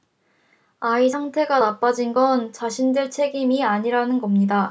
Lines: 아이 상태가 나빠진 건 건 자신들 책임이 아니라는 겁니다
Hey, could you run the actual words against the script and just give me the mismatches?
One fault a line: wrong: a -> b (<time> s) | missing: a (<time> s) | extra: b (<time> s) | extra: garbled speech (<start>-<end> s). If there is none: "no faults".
missing: 건 (2.5 s)